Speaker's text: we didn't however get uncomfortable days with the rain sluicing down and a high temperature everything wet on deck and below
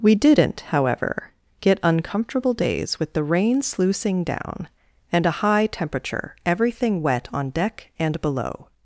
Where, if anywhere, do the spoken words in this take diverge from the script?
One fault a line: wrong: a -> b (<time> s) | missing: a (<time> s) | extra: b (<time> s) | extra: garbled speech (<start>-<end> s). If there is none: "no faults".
no faults